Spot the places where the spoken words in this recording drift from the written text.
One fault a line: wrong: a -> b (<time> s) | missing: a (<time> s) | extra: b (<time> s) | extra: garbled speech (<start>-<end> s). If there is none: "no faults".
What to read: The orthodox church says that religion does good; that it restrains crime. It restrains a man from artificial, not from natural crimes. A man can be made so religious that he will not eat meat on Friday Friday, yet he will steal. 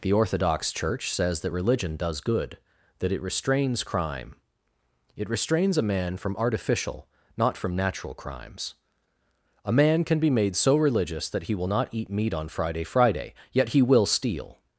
no faults